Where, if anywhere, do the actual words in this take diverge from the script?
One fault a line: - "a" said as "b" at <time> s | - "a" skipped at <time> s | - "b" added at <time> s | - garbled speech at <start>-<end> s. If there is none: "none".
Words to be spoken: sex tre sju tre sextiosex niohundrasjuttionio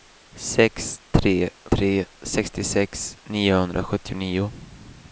- "sju" skipped at 1.3 s